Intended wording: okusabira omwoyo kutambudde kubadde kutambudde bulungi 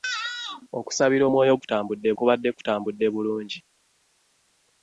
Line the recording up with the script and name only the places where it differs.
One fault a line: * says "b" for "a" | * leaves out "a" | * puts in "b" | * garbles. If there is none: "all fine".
all fine